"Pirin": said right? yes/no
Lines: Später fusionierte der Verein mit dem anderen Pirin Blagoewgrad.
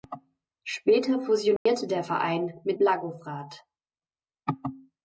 no